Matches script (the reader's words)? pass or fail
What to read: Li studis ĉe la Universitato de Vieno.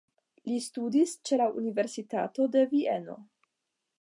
pass